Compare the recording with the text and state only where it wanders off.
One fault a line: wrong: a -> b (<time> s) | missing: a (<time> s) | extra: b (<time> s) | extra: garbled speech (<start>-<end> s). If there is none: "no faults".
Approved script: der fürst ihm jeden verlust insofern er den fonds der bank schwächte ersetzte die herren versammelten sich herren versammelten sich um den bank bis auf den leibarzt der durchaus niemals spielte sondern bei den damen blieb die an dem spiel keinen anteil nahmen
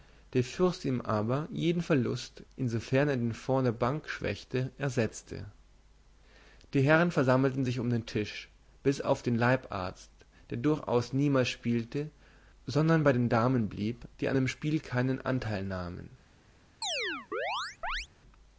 extra: aber (1.0 s)
missing: herren versammelten sich (7.8 s)
wrong: bank -> tisch (8.0 s)